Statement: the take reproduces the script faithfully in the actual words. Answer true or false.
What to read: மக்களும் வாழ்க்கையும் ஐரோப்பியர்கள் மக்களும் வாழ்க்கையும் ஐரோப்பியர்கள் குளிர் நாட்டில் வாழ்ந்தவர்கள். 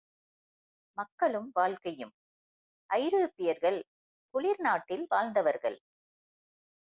false